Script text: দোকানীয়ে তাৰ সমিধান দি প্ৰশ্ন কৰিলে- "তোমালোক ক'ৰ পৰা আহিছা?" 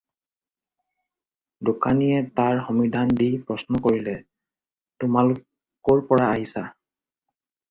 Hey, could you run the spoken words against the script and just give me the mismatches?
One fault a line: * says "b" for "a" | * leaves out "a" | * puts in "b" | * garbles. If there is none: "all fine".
all fine